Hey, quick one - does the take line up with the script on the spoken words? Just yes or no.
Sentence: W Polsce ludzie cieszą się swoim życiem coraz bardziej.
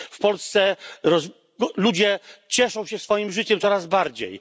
yes